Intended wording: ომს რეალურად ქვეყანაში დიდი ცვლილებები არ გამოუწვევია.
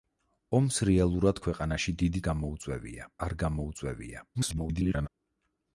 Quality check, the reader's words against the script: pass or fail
fail